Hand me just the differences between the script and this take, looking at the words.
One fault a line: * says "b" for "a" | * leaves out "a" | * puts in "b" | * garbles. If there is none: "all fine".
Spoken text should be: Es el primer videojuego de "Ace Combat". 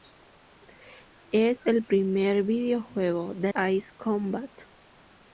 all fine